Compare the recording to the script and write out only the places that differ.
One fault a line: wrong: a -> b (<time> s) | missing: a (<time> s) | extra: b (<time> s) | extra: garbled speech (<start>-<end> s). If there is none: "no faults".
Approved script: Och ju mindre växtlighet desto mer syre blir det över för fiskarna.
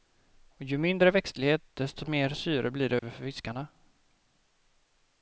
no faults